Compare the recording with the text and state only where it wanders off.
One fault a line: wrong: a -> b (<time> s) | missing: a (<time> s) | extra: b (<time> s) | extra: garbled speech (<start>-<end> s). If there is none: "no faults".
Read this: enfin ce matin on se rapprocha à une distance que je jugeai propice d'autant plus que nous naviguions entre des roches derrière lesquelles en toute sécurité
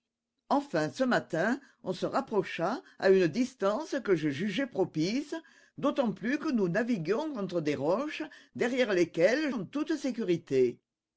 no faults